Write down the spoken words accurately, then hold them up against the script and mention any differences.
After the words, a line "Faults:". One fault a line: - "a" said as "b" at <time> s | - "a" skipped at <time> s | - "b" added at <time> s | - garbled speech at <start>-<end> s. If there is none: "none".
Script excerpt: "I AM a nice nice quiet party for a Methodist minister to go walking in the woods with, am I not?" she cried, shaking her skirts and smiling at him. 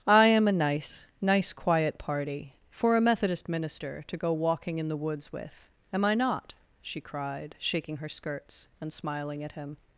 "I AM a nice nice quiet party for a Methodist minister to go walking in the woods with, am I not?" she cried, shaking her skirts and smiling at him.
Faults:
none